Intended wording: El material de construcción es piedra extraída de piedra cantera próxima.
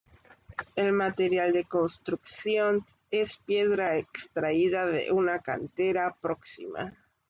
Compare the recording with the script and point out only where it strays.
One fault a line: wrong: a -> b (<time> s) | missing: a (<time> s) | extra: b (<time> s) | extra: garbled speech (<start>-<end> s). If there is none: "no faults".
wrong: piedra -> una (5.1 s)